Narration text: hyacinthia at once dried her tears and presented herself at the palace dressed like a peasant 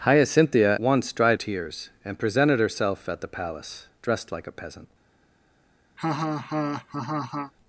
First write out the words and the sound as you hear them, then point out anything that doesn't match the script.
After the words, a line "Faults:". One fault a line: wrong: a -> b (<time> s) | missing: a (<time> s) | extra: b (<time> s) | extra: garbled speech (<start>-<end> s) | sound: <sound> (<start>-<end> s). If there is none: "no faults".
hyacinthia once dried tears and presented herself at the palace dressed like a peasant
Faults:
missing: at (0.8 s)
missing: her (1.4 s)
sound: laugh (6.0-7.5 s)